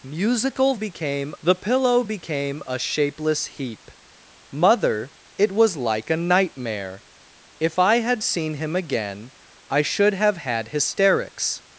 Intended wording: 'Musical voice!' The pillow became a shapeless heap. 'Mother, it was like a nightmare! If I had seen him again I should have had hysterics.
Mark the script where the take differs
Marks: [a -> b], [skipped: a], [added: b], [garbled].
'Musical [voice!' -> became] The pillow became a shapeless heap. 'Mother, it was like a nightmare! If I had seen him again I should have had hysterics.